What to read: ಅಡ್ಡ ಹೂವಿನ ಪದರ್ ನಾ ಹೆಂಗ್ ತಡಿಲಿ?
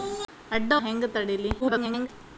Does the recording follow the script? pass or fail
fail